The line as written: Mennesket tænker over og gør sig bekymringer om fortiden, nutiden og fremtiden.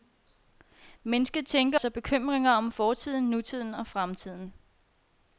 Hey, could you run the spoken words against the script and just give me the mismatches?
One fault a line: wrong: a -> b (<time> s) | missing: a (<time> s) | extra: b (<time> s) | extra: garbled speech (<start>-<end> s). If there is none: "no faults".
missing: over og gør (1.8 s)